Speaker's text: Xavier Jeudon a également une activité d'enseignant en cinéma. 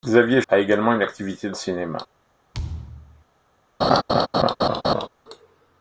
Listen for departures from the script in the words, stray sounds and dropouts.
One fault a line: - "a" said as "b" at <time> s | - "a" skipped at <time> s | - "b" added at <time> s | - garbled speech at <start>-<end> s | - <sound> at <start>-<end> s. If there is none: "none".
- "Jeudon" skipped at 0.4 s
- "d'enseignant" skipped at 1.5 s
- thud at 2.5-3.2 s
- laugh at 3.8-5.1 s